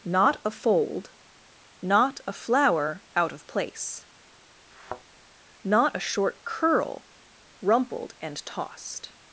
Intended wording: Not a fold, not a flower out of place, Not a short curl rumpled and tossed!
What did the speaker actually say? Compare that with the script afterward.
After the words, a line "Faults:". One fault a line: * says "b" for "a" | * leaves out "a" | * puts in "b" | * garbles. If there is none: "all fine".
Not a fold, not a flower out of place, Not a short curl rumpled and tossed!
Faults:
all fine